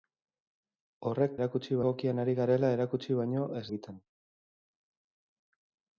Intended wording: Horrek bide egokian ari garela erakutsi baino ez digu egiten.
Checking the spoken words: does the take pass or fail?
fail